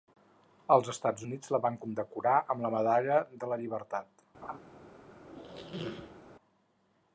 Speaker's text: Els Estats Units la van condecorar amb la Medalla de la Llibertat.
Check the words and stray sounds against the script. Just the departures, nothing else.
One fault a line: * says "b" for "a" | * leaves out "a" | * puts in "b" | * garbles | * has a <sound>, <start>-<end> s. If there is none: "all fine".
* has a laugh, 4.4-4.6 s
* has a squeak, 5.2-6.2 s